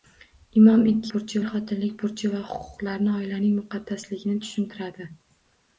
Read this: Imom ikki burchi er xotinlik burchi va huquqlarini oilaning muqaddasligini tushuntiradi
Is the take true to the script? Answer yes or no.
yes